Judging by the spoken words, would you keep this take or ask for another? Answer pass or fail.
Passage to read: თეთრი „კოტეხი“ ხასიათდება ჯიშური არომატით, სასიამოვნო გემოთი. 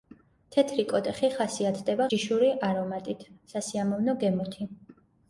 pass